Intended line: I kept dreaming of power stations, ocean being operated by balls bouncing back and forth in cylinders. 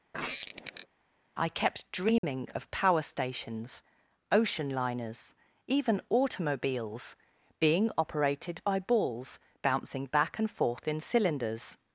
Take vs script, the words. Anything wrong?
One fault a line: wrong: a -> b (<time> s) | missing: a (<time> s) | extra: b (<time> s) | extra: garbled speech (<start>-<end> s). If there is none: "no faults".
extra: liners even automobiles (4.7 s)